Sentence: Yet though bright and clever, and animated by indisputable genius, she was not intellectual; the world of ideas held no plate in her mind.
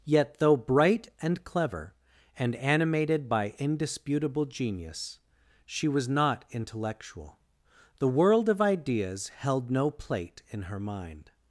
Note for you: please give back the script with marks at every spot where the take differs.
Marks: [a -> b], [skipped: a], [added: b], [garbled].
Yet though bright and clever, and animated by indisputable genius, she was not intellectual; the world of ideas held no plate in her mind.